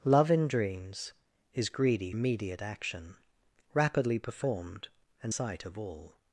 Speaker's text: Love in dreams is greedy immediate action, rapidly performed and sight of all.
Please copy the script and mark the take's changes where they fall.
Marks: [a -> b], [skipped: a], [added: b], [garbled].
Love in dreams is greedy immediate action, rapidly performed and sight of all.